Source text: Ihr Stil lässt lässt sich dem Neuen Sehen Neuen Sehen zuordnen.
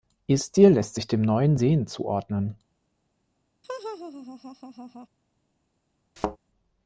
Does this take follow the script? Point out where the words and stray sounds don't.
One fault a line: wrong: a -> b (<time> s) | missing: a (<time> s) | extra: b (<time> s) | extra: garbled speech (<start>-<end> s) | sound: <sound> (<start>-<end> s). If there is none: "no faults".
missing: lässt (0.9 s)
missing: Neuen Sehen (1.9 s)
sound: laugh (3.6-5.1 s)
sound: thud (6.2-6.4 s)